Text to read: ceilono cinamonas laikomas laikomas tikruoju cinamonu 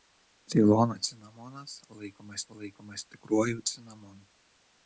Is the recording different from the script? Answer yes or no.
no